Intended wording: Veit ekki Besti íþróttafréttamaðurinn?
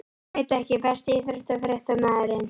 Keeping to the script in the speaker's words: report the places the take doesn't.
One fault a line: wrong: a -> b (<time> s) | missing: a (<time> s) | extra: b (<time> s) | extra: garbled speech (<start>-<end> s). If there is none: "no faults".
no faults